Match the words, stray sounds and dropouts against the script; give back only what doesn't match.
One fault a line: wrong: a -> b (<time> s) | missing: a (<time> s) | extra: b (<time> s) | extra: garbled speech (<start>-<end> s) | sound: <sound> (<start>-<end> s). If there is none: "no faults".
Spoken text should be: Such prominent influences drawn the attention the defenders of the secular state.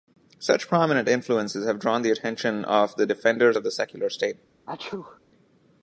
extra: have (1.7 s)
extra: of (2.6 s)
sound: sneeze (4.7-5.2 s)